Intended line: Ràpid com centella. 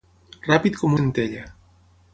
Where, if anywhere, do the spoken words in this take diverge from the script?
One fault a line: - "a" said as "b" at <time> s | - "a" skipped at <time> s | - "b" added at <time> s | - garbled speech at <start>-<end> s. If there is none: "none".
none